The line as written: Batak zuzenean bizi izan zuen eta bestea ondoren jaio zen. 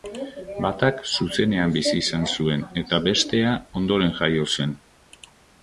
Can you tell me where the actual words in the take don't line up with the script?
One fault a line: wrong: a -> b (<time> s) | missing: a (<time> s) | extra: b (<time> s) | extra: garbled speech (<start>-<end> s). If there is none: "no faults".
no faults